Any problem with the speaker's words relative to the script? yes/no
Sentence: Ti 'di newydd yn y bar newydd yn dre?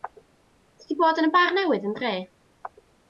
yes